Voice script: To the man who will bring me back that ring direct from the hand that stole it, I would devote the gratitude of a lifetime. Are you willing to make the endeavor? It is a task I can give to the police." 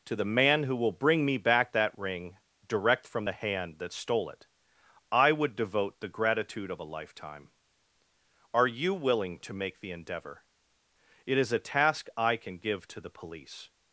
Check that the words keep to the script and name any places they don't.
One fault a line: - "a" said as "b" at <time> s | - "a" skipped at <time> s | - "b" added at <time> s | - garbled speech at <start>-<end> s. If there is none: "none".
none